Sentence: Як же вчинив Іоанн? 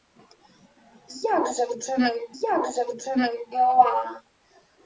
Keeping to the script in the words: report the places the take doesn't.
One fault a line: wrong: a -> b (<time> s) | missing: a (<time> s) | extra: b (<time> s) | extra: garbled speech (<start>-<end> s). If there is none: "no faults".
extra: як же вчинив (2.4 s)